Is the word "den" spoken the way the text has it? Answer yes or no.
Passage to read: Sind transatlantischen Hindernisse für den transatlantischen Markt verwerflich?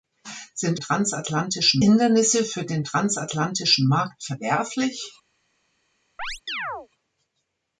yes